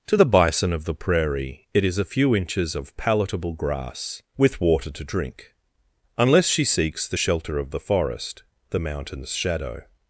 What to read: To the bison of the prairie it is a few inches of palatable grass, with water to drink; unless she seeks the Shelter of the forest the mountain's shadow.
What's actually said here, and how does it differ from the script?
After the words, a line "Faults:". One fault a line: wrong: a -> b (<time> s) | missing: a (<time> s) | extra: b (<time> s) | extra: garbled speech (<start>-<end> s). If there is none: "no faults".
To the bison of the prairie it is a few inches of palatable grass, with water to drink; unless she seeks the Shelter of the forest the mountain's shadow.
Faults:
no faults